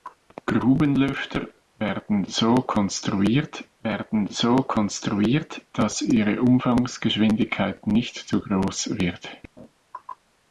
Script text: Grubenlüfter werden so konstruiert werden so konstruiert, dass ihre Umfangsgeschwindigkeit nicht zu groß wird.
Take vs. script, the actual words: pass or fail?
pass